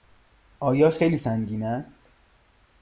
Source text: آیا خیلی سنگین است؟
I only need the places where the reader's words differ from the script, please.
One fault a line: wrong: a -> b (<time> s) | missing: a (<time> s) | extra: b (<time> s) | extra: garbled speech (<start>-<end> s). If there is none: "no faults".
no faults